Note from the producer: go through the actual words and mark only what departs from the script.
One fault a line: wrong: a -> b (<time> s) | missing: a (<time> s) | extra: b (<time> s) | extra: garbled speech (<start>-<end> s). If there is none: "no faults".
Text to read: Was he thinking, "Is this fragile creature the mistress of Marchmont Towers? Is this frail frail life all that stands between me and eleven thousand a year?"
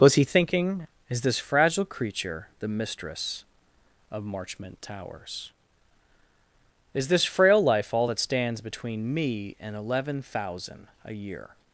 missing: frail (7.6 s)